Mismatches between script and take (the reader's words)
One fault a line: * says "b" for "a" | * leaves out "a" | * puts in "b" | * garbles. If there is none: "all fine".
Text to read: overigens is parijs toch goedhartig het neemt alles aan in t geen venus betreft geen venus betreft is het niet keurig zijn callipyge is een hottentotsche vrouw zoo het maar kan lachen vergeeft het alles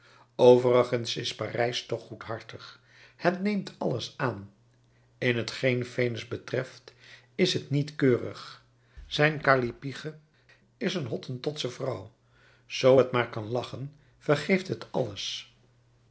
* leaves out "geen venus betreft"